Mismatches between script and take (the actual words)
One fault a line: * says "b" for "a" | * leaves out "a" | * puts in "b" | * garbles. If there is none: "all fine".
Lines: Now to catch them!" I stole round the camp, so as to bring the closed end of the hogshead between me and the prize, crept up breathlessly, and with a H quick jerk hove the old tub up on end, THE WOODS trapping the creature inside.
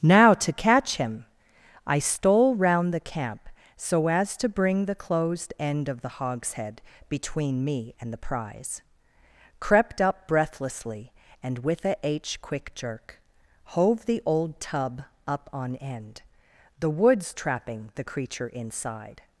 * says "him" for "them"